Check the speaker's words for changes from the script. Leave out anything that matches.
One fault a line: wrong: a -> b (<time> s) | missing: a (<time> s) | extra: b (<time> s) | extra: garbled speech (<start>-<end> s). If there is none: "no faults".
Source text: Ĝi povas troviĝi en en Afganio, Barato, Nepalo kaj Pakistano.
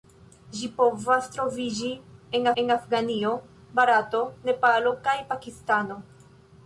no faults